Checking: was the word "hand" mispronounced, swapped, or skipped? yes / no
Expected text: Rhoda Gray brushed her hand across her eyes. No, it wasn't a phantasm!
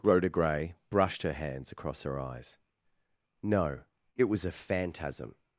yes